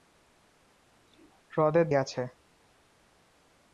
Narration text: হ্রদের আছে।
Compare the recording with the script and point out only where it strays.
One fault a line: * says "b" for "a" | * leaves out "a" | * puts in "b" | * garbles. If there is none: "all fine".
all fine